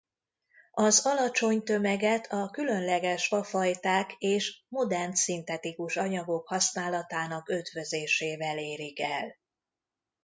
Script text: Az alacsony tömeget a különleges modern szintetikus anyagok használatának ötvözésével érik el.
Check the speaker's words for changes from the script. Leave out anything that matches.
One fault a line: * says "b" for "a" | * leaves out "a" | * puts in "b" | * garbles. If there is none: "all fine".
* puts in "fafajták és"